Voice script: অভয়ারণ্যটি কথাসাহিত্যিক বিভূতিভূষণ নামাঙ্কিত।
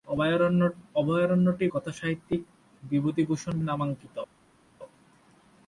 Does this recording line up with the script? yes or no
yes